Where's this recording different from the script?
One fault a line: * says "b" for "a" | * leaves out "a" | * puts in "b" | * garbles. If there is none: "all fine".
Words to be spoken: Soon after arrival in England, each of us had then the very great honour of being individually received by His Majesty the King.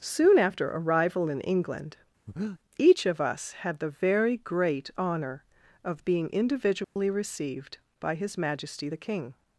* leaves out "then"